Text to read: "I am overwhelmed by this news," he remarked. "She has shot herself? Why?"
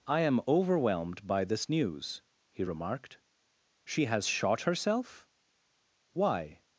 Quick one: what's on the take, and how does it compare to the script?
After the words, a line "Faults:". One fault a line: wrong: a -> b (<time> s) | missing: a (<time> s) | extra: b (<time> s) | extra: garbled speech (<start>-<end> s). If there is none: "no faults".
"I am overwhelmed by this news," he remarked. "She has shot herself? Why?"
Faults:
no faults